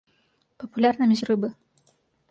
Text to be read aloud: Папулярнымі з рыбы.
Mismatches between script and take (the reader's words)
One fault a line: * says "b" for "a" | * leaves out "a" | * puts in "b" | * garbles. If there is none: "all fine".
all fine